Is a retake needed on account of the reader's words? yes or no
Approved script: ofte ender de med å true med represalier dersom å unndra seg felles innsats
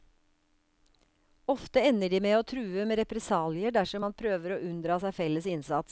yes